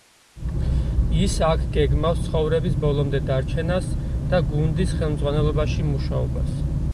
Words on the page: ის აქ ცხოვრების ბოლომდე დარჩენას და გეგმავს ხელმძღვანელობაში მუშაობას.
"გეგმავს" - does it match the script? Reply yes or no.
no